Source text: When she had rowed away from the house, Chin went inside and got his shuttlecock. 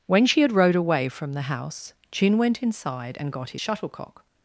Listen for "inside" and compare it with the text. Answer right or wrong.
right